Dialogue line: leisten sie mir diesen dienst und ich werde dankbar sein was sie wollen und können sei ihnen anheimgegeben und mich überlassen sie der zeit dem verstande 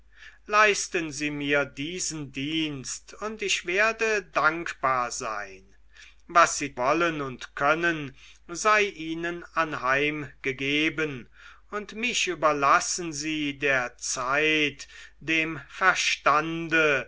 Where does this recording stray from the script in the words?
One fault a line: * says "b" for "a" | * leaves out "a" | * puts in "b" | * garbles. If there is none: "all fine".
all fine